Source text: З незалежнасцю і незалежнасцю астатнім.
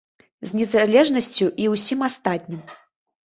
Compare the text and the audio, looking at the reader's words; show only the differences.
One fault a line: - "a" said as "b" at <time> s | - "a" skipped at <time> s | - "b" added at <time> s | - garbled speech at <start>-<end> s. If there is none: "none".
- "незалежнасцю" said as "ўсім" at 1.8 s